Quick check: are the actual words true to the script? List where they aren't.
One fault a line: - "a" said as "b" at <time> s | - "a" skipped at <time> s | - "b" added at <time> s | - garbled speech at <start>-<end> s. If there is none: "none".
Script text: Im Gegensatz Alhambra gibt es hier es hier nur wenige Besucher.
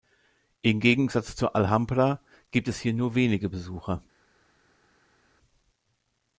- "zur" added at 1.4 s
- "es hier" skipped at 2.9 s